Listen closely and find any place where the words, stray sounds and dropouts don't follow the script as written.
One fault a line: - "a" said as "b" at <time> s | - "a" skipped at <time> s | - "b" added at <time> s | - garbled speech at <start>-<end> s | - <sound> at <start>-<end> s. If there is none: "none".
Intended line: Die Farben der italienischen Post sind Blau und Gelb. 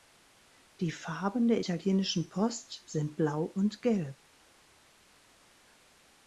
none